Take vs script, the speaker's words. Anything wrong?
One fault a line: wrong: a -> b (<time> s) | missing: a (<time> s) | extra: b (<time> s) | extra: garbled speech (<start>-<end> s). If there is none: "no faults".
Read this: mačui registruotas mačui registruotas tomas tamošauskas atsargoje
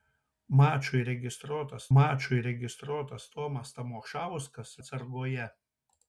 no faults